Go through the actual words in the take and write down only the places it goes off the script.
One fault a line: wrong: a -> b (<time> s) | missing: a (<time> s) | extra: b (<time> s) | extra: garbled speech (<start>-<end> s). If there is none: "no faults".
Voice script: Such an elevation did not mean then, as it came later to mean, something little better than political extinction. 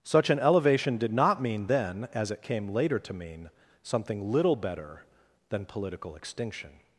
no faults